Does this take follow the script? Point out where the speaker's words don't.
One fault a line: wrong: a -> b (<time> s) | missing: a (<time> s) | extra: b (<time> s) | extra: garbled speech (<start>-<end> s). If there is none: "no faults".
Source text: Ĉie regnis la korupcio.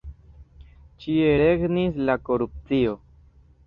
no faults